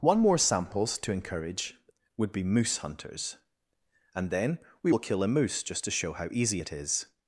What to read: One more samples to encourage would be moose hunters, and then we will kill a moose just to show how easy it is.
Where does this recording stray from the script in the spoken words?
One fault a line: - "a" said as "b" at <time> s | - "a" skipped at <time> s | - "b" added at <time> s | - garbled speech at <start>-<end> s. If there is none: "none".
none